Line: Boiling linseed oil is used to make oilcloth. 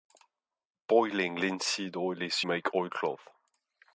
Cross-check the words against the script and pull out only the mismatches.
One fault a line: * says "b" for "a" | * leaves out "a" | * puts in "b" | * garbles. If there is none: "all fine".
* leaves out "used to"